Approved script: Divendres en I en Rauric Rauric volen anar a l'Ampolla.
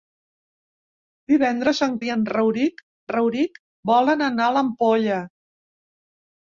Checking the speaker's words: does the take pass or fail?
pass